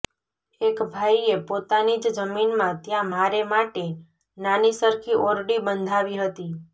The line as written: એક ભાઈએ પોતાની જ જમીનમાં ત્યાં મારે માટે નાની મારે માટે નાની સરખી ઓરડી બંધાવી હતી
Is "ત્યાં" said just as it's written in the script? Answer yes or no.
yes